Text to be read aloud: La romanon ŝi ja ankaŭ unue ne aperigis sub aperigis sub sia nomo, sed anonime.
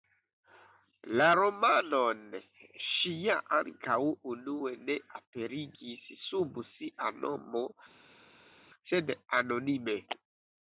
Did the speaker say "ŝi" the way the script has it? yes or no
yes